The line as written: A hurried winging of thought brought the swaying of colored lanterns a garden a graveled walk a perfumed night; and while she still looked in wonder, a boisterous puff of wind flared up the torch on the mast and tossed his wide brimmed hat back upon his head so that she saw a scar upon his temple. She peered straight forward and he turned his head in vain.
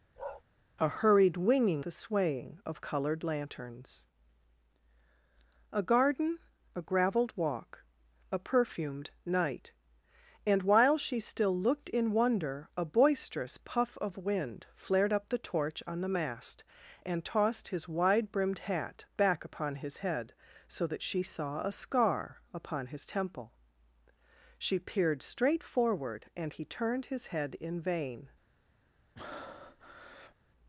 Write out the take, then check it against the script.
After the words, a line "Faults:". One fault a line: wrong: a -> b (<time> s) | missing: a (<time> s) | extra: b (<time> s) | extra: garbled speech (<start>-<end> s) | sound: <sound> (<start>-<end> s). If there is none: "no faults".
A hurried winging the swaying of colored lanterns a garden a graveled walk a perfumed night; and while she still looked in wonder, a boisterous puff of wind flared up the torch on the mast and tossed his wide brimmed hat back upon his head so that she saw a scar upon his temple. She peered straight forward and he turned his head in vain.
Faults:
sound: bark (0.2-0.4 s)
missing: of thought brought (1.9 s)
sound: breath (29.2-30.4 s)